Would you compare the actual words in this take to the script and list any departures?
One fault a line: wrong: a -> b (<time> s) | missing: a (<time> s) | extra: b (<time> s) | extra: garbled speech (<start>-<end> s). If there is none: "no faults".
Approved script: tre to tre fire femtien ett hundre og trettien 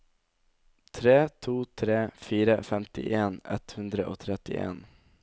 no faults